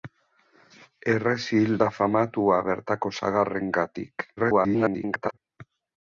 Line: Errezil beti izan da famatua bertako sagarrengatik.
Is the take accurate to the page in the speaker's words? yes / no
no